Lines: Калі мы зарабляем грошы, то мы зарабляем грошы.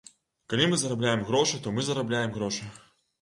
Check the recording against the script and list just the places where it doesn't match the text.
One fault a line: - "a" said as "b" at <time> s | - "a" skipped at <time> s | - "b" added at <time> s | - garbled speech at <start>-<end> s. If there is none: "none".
none